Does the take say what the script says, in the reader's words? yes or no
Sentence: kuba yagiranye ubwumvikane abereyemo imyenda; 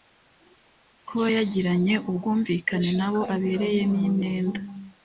no